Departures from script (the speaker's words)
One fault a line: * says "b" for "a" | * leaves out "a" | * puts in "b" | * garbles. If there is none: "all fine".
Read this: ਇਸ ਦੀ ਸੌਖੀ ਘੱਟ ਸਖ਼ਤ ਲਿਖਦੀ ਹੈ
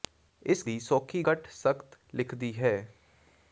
all fine